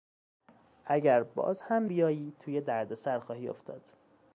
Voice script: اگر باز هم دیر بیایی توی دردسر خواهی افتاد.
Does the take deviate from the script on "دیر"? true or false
true